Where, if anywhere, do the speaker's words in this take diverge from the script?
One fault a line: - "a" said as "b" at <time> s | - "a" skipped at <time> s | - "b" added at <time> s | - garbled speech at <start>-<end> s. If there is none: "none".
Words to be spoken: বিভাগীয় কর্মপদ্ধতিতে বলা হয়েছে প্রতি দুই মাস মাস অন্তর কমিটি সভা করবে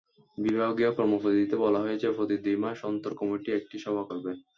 - "মাস" skipped at 2.8 s
- "একটি" added at 3.5 s